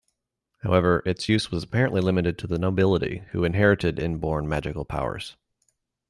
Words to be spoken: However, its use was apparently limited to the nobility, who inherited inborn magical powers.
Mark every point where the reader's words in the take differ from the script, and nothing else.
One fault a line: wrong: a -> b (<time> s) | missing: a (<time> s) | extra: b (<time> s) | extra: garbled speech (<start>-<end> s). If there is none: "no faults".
no faults